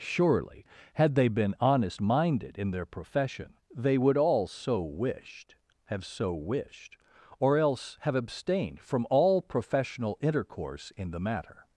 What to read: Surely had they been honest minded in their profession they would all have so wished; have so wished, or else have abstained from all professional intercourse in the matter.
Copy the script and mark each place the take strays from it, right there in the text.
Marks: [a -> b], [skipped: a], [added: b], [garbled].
Surely had they been honest minded in their profession they would all [skipped: have] so wished; have so wished, or else have abstained from all professional intercourse in the matter.